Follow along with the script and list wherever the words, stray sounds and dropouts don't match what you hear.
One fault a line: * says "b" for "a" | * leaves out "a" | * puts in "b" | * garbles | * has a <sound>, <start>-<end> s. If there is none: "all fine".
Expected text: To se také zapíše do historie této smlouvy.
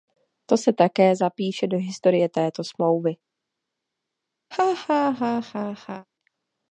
* has a laugh, 4.5-6.1 s